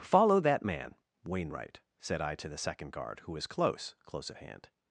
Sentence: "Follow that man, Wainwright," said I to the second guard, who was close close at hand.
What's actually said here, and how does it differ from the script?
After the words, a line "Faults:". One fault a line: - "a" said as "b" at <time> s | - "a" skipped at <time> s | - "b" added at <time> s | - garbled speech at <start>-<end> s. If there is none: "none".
"Follow that man, Wainwright," said I to the second guard, who was close close at hand.
Faults:
none